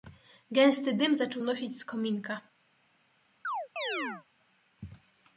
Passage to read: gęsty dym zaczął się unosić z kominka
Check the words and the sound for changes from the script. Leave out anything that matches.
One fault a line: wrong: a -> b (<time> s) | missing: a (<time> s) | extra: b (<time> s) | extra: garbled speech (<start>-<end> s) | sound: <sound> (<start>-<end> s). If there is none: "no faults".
missing: się (1.4 s)
sound: chirp (3.4-4.3 s)